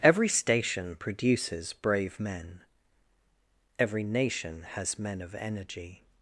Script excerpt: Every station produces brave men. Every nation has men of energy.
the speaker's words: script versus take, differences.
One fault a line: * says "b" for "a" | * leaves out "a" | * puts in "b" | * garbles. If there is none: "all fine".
all fine